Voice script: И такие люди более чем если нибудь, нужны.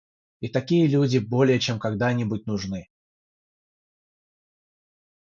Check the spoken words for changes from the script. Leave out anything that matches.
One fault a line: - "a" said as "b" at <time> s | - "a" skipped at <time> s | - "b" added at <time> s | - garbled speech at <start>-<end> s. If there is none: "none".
- "если" said as "когда" at 1.8 s